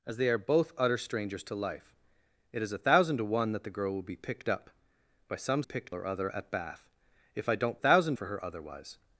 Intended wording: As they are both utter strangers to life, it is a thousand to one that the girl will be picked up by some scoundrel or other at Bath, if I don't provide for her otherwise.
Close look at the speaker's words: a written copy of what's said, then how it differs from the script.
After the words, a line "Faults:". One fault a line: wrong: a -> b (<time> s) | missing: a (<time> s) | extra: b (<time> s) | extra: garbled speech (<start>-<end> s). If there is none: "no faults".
As they are both utter strangers to life, it is a thousand to one that the girl will be picked up by some picked or other at Bath, if I don't thousand for her otherwise.
Faults:
wrong: scoundrel -> picked (5.6 s)
wrong: provide -> thousand (7.7 s)